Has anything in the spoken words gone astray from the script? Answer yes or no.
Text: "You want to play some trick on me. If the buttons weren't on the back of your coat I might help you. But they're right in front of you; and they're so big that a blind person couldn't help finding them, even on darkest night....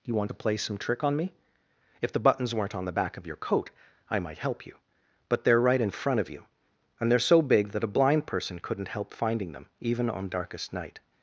no